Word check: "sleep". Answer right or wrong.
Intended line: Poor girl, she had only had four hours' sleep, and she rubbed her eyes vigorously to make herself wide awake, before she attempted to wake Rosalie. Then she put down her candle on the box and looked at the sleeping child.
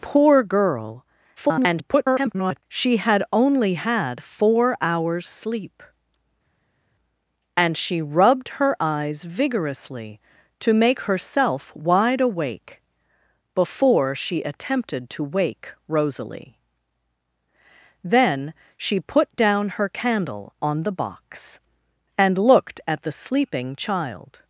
right